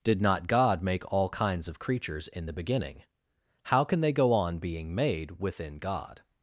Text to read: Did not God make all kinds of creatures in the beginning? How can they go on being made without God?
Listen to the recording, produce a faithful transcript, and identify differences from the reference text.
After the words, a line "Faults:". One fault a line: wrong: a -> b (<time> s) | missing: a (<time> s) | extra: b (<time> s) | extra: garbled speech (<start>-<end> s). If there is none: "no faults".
Did not God make all kinds of creatures in the beginning? How can they go on being made within God?
Faults:
wrong: without -> within (5.4 s)